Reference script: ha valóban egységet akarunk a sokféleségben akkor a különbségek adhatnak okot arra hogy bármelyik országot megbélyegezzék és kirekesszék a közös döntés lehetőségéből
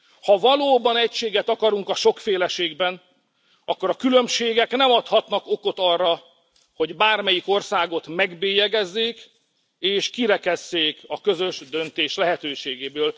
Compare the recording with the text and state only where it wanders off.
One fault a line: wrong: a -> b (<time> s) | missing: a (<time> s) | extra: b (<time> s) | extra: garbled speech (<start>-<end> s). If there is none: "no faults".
extra: nem (4.7 s)